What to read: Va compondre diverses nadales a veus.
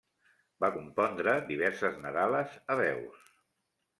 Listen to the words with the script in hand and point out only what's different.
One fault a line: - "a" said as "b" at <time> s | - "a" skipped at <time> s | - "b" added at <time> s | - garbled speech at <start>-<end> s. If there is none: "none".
none